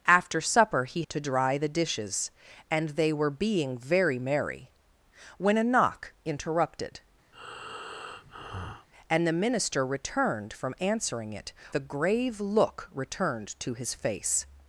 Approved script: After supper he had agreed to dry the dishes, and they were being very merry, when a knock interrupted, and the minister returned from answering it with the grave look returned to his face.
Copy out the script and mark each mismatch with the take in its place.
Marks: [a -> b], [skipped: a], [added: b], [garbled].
After supper he [skipped: had agreed] to dry the dishes, and they were being very merry, when a knock interrupted, and the minister returned from answering it [skipped: with] the grave look returned to his face.